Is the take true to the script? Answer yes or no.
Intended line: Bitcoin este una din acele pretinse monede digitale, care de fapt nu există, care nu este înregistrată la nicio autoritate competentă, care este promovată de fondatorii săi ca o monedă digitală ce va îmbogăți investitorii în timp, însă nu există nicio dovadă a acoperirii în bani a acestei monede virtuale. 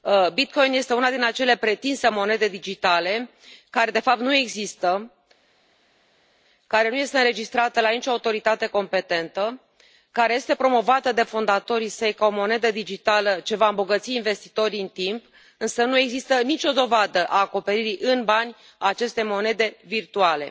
yes